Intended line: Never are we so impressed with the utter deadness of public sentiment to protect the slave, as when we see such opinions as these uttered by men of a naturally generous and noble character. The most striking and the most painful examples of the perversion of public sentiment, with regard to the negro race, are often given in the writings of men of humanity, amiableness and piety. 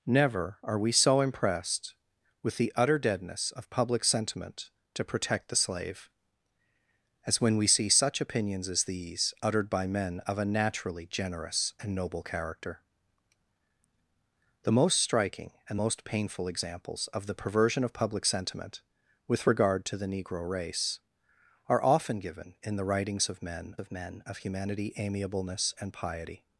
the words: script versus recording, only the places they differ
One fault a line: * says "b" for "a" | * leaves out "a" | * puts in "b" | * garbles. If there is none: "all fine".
* leaves out "the"
* puts in "men of"